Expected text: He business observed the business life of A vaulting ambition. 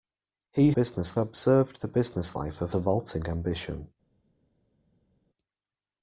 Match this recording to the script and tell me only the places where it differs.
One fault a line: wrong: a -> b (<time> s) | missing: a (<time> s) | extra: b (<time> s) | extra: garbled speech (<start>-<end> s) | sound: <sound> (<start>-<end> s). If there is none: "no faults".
no faults